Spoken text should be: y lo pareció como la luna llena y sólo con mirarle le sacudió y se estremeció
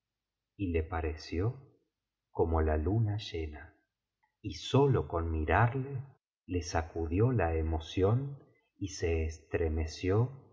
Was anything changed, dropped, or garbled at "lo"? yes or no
yes